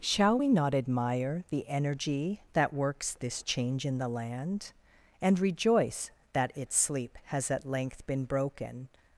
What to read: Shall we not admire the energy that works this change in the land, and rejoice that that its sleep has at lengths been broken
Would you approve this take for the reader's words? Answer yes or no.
no